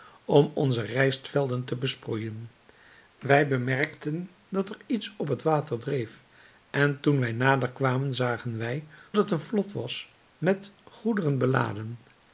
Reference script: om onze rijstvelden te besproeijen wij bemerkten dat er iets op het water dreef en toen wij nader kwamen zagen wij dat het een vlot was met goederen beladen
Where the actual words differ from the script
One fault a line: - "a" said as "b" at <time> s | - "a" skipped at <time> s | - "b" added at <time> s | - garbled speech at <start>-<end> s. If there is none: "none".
- "dat" skipped at 8.9 s